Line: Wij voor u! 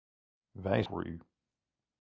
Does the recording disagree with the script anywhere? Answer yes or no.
no